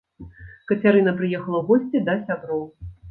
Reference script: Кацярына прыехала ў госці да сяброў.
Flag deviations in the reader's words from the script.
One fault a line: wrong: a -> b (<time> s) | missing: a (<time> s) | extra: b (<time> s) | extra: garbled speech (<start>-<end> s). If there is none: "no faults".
no faults